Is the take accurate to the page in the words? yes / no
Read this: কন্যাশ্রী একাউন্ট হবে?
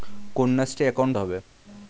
yes